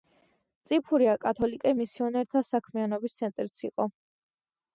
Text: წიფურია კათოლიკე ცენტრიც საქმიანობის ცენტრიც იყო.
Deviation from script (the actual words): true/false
true